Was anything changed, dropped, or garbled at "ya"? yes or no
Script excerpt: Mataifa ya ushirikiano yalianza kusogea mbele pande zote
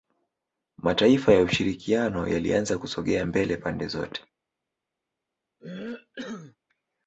no